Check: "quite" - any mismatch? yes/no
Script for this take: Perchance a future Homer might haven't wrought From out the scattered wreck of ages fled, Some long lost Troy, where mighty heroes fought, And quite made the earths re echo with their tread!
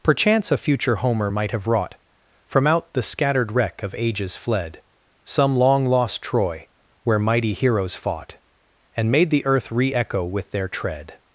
yes